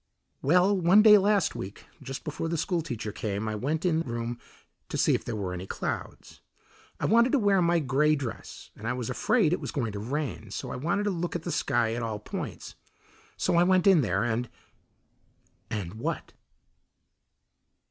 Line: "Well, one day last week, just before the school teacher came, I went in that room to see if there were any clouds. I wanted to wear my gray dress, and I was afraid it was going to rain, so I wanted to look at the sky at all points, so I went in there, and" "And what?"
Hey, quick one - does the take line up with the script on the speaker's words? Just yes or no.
no